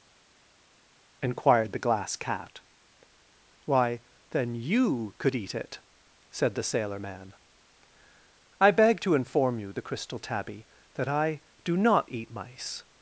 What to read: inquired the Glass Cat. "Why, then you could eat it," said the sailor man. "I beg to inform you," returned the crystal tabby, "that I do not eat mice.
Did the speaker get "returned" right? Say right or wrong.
wrong